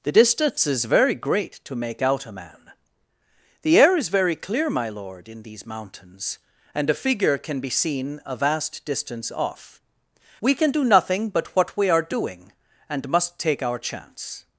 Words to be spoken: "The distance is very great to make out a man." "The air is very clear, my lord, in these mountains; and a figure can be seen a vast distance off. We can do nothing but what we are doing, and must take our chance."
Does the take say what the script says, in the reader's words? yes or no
yes